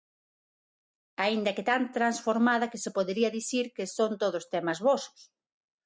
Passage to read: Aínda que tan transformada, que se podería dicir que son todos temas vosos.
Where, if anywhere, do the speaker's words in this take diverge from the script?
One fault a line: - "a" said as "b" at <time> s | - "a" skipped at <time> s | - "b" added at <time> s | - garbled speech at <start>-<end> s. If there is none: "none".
none